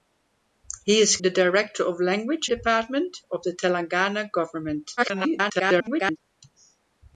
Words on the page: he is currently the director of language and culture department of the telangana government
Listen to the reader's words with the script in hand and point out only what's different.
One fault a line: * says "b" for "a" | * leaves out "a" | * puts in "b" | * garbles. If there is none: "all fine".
* leaves out "currently"
* leaves out "and culture"
* garbles